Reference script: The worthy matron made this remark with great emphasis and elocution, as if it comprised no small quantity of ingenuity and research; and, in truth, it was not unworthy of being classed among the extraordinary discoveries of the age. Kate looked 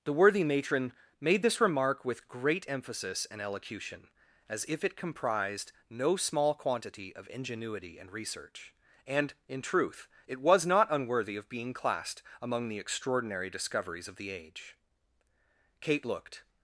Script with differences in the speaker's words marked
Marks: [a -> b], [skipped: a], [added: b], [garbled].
The worthy matron made this remark with great emphasis and elocution, as if it comprised no small quantity of ingenuity and research; and, in truth, it was not unworthy of being classed among the extraordinary discoveries of the age. Kate looked